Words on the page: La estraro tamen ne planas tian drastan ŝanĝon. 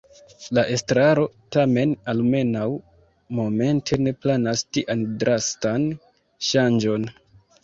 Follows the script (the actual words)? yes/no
no